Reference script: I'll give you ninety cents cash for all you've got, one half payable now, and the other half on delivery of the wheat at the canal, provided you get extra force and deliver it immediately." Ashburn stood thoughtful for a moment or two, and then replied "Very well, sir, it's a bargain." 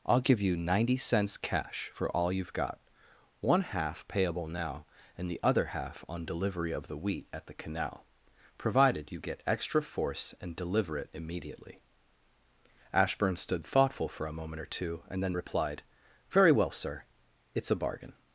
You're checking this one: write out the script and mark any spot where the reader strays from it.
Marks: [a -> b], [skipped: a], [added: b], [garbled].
I'll give you ninety cents cash for all you've got, one half payable now, and the other half on delivery of the wheat at the canal, provided you get extra force and deliver it immediately." Ashburn stood thoughtful for a moment or two, and then replied "Very well, sir, it's a bargain."